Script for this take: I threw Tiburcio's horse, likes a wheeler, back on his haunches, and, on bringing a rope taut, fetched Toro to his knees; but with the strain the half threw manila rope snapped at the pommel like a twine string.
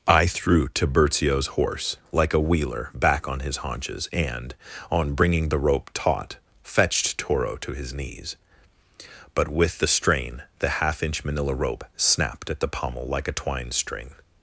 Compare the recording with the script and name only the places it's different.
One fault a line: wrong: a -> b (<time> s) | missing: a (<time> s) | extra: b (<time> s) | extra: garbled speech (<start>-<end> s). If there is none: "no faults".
wrong: likes -> like (2.1 s)
wrong: a -> the (5.5 s)
wrong: threw -> inch (11.0 s)